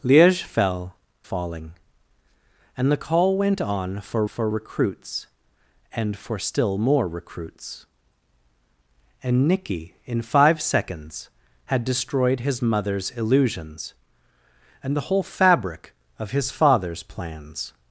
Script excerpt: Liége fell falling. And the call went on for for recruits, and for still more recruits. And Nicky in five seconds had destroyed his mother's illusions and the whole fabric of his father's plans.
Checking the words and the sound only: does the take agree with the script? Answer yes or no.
yes